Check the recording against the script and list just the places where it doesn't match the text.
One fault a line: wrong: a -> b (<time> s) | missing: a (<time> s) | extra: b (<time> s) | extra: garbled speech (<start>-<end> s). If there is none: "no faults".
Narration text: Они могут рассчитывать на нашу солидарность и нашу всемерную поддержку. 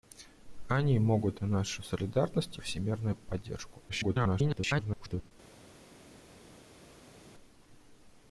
missing: рассчитывать (1.4 s)
missing: нашу (2.6 s)
extra: garbled speech (3.9-5.3 s)